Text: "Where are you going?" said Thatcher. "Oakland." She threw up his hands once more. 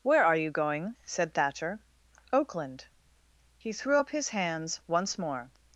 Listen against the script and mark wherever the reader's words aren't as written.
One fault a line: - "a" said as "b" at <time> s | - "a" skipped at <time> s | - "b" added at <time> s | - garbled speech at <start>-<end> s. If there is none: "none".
- "She" said as "He" at 3.6 s